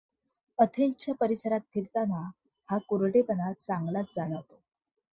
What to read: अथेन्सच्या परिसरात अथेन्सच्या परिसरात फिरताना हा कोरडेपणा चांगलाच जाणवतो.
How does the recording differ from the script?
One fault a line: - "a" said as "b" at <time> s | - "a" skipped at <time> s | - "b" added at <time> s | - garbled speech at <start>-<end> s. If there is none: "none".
- "अथेन्सच्या परिसरात" skipped at 1.6 s